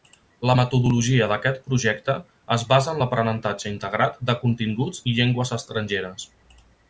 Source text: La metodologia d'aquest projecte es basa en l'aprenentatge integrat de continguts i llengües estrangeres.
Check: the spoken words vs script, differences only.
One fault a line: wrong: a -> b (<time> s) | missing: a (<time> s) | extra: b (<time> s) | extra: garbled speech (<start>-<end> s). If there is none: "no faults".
no faults